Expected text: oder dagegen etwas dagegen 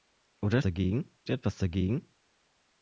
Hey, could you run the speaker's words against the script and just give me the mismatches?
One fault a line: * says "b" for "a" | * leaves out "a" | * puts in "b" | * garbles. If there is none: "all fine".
all fine